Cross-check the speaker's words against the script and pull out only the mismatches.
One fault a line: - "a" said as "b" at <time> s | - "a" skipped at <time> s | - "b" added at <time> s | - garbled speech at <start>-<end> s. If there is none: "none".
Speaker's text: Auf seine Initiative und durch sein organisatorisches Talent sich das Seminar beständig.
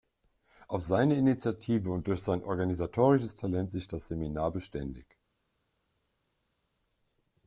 none